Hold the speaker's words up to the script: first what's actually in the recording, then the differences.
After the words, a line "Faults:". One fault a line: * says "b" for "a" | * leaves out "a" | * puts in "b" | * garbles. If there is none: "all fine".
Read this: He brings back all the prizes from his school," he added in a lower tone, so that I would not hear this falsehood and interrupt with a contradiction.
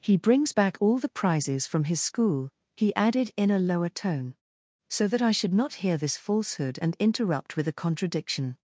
He brings back all the prizes from his school," he added in a lower tone, so that I should not hear this falsehood and interrupt with a contradiction.
Faults:
* says "should" for "would"